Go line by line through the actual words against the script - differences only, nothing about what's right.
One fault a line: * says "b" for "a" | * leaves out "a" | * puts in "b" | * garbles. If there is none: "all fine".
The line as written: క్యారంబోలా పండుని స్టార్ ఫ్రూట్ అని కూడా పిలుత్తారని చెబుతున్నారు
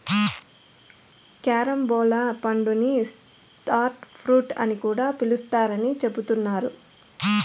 all fine